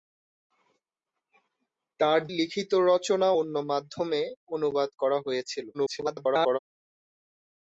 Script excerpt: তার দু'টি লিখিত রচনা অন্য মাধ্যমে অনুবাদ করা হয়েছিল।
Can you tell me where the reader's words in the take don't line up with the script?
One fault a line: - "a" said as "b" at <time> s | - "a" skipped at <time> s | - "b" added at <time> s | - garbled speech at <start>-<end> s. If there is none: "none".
- "দু'টি" skipped at 2.2 s
- garbled speech at 5.7-6.6 s